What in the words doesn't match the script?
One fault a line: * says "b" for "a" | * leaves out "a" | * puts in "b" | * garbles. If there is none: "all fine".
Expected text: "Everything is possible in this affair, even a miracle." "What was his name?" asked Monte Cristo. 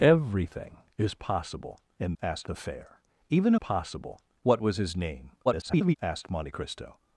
* says "asked" for "this"
* says "possible" for "miracle"
* garbles